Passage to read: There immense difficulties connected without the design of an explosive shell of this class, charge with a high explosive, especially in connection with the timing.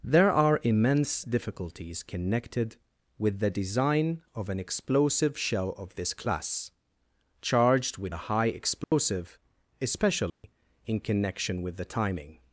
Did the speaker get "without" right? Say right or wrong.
wrong